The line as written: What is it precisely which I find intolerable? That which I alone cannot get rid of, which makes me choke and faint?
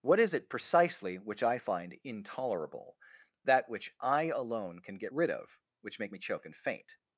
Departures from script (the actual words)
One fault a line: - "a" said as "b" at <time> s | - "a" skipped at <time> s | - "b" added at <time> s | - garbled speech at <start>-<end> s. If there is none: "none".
- "cannot" said as "can" at 4.8 s
- "makes" said as "make" at 6.0 s